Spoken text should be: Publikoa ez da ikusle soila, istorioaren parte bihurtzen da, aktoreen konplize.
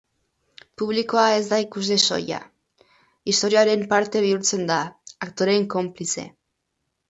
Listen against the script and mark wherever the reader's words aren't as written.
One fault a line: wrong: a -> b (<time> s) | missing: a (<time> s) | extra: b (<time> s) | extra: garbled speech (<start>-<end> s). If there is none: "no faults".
no faults